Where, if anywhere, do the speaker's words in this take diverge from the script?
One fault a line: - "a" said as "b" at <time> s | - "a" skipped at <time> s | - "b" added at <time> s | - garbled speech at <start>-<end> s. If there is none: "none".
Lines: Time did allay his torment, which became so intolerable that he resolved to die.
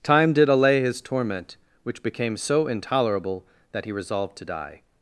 none